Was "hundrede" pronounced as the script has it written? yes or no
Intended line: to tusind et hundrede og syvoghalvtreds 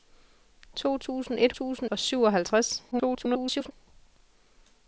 no